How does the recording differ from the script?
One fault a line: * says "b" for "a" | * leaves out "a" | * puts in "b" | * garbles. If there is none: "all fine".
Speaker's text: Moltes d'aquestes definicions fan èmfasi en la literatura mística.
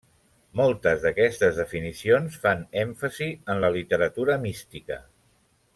all fine